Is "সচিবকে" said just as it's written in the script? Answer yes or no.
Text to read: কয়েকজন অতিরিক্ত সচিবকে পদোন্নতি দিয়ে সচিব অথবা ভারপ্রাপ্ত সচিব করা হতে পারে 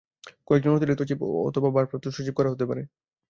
no